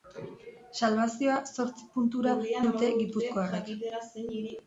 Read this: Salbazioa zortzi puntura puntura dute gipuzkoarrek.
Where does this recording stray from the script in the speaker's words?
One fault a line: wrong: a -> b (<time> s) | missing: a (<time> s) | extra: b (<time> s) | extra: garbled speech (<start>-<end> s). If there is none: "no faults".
missing: puntura (2.3 s)